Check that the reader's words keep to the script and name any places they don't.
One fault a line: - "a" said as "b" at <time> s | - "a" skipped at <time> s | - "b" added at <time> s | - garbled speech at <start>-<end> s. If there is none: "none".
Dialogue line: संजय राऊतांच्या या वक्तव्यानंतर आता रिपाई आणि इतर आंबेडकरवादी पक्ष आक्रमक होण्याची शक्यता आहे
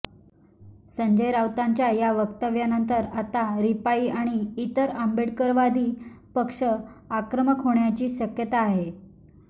none